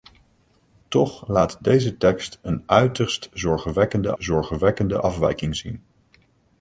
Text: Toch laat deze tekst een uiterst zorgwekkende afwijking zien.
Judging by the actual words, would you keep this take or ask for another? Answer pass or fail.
fail